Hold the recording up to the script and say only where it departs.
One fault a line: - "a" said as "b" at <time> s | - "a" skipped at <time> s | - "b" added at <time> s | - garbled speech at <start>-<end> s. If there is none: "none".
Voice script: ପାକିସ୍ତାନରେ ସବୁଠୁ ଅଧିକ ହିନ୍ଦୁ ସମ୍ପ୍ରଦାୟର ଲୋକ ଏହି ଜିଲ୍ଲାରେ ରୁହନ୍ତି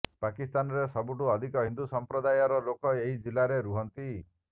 none